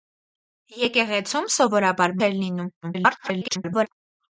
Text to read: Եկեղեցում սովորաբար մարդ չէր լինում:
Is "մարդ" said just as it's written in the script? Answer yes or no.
no